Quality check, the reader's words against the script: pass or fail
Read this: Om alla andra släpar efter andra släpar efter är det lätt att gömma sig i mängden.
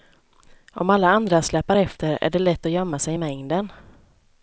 fail